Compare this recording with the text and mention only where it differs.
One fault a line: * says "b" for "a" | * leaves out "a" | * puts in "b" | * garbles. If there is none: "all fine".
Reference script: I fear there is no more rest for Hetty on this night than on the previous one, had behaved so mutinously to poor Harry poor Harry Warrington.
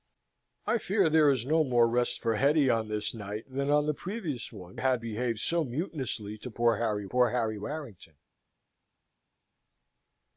all fine